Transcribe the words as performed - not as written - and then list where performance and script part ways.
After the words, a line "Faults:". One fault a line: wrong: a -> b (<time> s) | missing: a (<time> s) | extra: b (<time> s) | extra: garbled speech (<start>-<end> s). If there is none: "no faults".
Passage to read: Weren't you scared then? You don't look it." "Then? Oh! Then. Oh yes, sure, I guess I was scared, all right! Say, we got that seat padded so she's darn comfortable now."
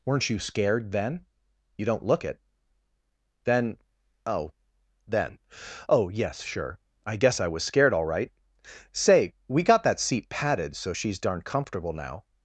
Weren't you scared then? You don't look it." "Then? Oh! Then. Oh yes, sure, I guess I was scared, all right! Say, we got that seat padded so she's darn comfortable now."
Faults:
no faults